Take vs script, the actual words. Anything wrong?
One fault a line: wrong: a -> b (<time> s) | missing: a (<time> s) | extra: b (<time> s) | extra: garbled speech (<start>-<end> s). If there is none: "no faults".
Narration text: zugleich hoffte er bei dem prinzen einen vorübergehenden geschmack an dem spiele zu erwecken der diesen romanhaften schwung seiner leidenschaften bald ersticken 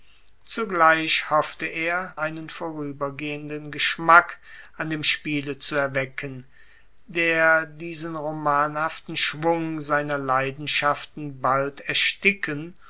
missing: bei dem prinzen (2.1 s)